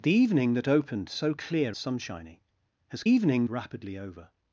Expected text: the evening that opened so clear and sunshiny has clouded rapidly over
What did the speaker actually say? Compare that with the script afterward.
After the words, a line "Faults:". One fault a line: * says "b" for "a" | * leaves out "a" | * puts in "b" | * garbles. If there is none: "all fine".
the evening that opened so clear sunshiny has evening rapidly over
Faults:
* leaves out "and"
* says "evening" for "clouded"